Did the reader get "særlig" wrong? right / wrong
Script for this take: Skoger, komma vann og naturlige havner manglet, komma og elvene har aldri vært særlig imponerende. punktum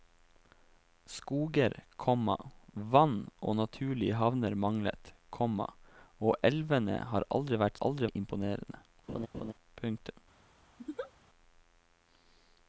wrong